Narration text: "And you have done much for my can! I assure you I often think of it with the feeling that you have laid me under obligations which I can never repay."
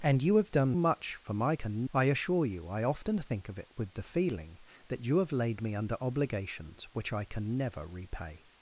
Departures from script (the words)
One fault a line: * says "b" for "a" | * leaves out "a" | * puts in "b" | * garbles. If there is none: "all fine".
all fine